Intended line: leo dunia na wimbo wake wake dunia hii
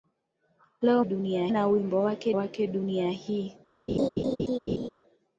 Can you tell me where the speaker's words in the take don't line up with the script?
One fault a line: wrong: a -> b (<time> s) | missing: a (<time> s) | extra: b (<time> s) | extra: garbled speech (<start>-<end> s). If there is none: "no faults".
no faults